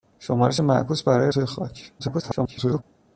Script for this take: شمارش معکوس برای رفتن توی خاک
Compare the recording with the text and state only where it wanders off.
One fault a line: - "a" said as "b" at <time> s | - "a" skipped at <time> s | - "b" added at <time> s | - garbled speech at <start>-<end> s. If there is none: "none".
- "رفتن" skipped at 1.3 s
- garbled speech at 2.0-2.8 s